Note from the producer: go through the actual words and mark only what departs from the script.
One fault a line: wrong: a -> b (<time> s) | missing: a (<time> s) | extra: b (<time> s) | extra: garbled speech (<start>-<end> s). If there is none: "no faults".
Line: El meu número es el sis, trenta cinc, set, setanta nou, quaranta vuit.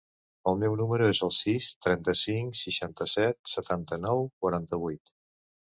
extra: seixanta (2.6 s)